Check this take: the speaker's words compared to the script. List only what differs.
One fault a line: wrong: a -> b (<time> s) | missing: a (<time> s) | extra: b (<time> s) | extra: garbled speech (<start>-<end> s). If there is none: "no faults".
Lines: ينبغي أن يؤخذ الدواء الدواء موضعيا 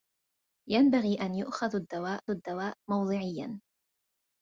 no faults